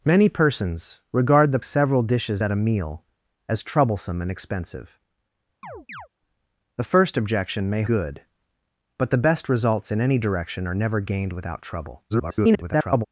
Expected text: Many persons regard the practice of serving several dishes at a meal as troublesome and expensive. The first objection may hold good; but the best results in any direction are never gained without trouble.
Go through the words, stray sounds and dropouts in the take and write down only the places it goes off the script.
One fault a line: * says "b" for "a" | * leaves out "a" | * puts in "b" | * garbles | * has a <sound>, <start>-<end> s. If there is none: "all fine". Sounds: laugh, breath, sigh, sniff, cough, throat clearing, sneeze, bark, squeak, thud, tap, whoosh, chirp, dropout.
* leaves out "practice of serving"
* has a chirp, 5.6-6.1 s
* leaves out "hold"
* garbles